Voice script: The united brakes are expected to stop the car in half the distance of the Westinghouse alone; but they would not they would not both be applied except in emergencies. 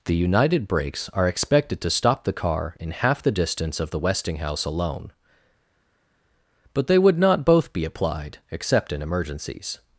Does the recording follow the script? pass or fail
fail